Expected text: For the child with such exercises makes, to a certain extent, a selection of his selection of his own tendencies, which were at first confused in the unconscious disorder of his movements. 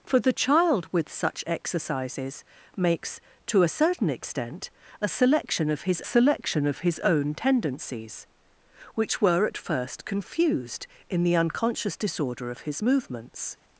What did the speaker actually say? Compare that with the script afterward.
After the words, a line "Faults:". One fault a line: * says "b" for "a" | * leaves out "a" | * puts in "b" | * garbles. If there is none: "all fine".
For the child with such exercises makes, to a certain extent, a selection of his selection of his own tendencies, which were at first confused in the unconscious disorder of his movements.
Faults:
all fine